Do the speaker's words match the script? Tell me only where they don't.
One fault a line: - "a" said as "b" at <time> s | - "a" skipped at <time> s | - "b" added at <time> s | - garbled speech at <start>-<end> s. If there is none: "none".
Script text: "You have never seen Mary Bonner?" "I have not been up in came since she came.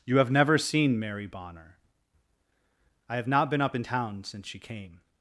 - "came" said as "town" at 3.8 s